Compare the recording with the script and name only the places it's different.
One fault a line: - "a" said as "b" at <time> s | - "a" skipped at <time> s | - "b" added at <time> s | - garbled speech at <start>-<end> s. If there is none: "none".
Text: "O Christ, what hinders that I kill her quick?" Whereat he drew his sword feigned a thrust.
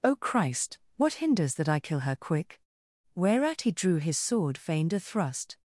none